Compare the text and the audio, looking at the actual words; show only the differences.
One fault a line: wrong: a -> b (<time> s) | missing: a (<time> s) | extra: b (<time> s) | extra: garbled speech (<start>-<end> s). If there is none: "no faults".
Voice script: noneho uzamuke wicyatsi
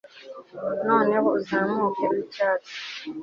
no faults